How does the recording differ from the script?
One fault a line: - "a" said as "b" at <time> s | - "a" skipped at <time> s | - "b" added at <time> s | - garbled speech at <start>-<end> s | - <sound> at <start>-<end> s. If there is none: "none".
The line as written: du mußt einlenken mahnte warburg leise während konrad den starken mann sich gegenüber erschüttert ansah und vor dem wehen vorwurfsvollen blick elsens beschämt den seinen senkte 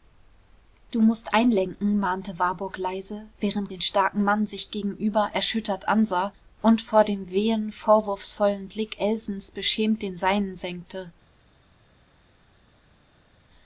- "konrad" skipped at 3.7 s